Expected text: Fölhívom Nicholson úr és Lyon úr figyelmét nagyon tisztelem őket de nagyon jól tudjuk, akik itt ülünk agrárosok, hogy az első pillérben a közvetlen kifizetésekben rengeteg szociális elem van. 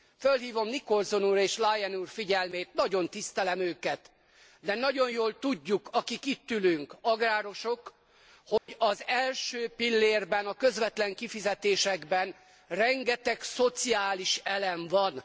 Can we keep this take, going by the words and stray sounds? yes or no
no